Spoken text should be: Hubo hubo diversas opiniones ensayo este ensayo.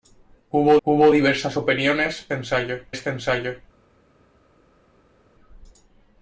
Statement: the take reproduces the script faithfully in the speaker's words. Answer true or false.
true